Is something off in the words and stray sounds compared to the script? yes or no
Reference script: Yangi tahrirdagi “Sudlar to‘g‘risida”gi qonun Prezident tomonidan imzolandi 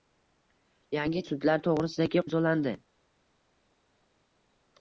yes